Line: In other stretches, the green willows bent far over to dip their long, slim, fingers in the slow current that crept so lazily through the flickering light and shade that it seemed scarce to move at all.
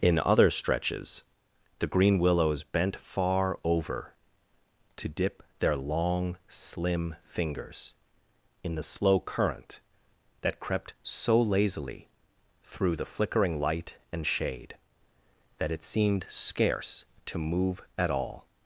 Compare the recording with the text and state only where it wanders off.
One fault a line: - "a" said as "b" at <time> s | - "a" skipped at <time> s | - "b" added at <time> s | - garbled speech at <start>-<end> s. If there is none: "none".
none